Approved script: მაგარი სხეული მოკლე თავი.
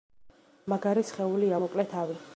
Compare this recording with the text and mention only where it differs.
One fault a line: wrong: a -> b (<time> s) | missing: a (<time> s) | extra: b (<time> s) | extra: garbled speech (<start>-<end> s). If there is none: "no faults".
no faults